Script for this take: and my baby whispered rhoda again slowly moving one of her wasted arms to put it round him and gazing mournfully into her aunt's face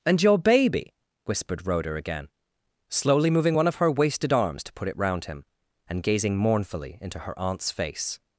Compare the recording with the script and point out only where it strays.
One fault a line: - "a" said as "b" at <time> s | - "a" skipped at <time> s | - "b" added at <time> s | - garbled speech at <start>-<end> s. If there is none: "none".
- "my" said as "your" at 0.2 s